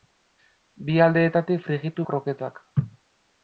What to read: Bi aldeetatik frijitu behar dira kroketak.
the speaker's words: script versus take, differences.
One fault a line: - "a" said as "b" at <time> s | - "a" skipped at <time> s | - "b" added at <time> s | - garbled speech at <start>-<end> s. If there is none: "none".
- "behar dira" skipped at 2.0 s